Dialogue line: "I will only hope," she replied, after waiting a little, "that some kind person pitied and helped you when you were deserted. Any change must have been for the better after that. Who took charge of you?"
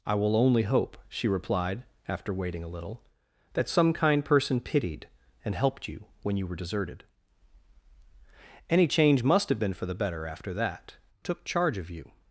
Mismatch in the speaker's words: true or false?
true